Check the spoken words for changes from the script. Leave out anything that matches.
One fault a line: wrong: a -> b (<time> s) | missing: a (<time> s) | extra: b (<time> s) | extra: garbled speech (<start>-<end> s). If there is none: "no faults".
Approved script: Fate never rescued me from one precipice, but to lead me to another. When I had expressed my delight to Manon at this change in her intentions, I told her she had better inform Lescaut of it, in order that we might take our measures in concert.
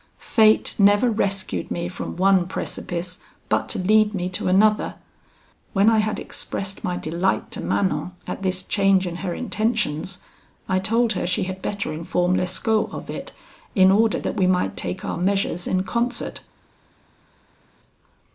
no faults